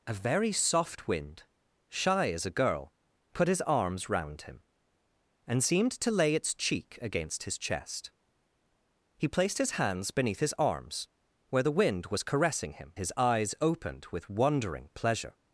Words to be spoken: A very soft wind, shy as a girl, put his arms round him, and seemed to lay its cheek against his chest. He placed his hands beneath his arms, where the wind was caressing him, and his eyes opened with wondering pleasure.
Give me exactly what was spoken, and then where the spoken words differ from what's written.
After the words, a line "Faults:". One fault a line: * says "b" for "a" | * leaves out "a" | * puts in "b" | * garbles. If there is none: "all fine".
A very soft wind, shy as a girl, put his arms round him, and seemed to lay its cheek against his chest. He placed his hands beneath his arms, where the wind was caressing him, his eyes opened with wondering pleasure.
Faults:
* leaves out "and"